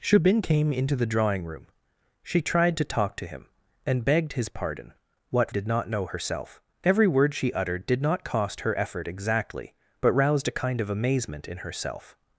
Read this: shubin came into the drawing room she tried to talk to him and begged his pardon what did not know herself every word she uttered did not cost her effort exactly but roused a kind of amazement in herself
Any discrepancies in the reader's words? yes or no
no